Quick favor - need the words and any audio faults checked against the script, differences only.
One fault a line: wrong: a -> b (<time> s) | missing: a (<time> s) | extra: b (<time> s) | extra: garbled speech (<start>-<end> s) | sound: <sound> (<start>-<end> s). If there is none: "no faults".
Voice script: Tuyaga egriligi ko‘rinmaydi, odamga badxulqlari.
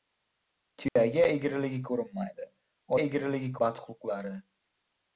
sound: dropout (0.9-1.0 s)
wrong: odamga -> egriligi (3.0 s)